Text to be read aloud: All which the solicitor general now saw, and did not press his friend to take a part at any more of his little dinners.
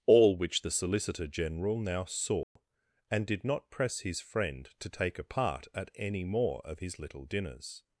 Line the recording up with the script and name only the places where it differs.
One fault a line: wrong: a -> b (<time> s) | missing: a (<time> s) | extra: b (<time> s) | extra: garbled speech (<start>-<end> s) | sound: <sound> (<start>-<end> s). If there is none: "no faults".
sound: dropout (2.4-2.6 s)